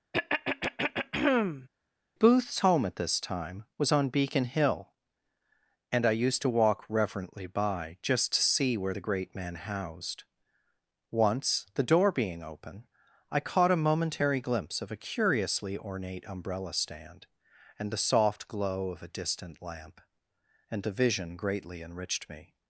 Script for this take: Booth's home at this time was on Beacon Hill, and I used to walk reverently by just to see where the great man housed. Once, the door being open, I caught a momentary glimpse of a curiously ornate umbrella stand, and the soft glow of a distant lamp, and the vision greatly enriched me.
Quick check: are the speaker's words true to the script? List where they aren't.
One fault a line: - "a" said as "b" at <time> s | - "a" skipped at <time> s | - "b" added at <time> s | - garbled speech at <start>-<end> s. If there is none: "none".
none